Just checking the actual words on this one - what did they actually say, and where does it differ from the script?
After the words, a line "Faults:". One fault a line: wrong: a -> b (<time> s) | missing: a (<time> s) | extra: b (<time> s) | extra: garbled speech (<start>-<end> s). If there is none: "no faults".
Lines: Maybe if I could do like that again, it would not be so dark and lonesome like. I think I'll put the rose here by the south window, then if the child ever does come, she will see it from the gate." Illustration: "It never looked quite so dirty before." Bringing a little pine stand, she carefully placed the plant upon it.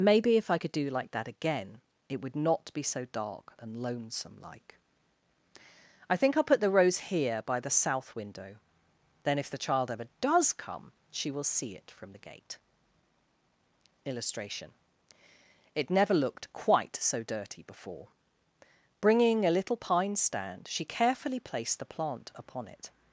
Maybe if I could do like that again, it would not be so dark and lonesome like. I think I'll put the rose here by the south window, then if the child ever does come, she will see it from the gate." Illustration: "It never looked quite so dirty before." Bringing a little pine stand, she carefully placed the plant upon it.
Faults:
no faults